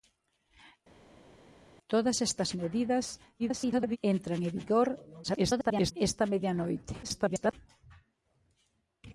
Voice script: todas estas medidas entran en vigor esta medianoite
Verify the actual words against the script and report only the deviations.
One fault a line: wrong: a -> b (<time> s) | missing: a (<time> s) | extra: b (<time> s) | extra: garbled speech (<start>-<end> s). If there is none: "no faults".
extra: garbled speech (3.4-4.0 s)
extra: garbled speech (5.2-5.9 s)
extra: garbled speech (7.0-7.5 s)